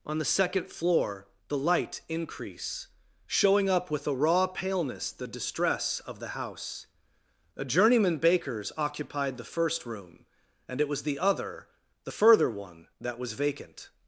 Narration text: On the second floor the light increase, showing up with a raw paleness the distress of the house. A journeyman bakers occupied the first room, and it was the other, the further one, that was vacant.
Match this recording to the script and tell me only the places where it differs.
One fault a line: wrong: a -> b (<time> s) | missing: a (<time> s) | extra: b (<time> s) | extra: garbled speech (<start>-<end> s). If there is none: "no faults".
no faults